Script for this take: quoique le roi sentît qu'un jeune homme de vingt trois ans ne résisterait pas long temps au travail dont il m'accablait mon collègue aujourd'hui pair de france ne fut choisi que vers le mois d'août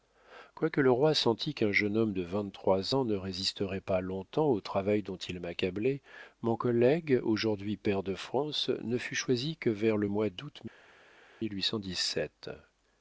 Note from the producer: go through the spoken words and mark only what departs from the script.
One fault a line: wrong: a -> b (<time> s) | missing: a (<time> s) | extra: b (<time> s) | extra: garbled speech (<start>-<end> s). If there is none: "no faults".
no faults